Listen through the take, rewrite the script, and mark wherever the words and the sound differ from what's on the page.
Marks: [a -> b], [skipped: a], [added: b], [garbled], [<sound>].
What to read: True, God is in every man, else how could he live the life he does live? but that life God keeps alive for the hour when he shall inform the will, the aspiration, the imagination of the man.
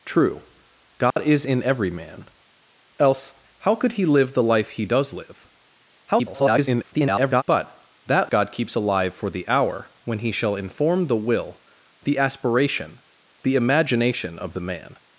True, God [dropout] is in every man, else how could he live the life he does live? [garbled] but that [skipped: life] God keeps alive for the hour when he shall inform the will, the aspiration, the imagination of the man.